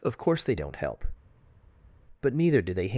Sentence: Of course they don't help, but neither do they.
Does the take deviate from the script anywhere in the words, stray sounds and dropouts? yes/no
no